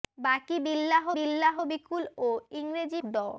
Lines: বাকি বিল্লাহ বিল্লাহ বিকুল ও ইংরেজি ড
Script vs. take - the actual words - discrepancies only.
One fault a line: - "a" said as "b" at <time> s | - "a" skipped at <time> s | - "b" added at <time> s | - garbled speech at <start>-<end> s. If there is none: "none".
none